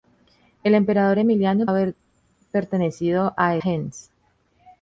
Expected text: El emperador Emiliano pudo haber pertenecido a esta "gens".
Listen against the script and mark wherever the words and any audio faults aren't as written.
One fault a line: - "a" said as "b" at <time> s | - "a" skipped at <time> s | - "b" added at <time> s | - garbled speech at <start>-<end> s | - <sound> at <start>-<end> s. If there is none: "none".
- "pudo" skipped at 1.7 s
- "esta" skipped at 3.6 s